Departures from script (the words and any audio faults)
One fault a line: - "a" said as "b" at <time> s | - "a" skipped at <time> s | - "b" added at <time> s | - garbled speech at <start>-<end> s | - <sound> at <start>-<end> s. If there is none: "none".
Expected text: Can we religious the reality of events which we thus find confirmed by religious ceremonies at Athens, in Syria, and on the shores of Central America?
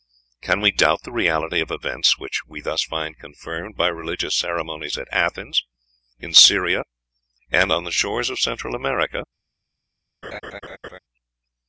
- "religious" said as "doubt" at 0.7 s
- laugh at 10.2-11.0 s